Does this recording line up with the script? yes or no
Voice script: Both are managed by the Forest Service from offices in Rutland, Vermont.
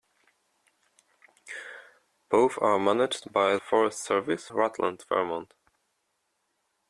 no